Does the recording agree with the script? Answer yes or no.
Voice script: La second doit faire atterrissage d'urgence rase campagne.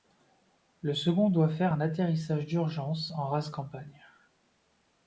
no